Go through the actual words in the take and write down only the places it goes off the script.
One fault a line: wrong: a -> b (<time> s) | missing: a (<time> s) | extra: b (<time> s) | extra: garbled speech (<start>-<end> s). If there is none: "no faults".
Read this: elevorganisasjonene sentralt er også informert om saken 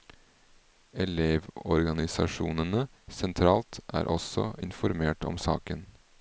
no faults